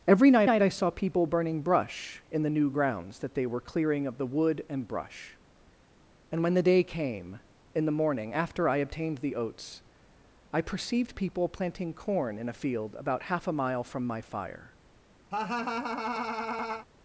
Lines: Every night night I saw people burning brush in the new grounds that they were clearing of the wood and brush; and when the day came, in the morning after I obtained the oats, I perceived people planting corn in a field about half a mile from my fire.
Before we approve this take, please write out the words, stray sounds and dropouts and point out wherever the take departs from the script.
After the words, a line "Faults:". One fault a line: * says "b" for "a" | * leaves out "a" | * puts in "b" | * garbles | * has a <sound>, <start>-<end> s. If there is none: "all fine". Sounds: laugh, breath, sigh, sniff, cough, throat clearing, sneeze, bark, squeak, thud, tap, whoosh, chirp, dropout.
Every night night I saw people burning brush in the new grounds that they were clearing of the wood and brush; and when the day came, in the morning after I obtained the oats, I perceived people planting corn in a field about half a mile from my fire.
Faults:
* has a laugh, 15.3-16.9 s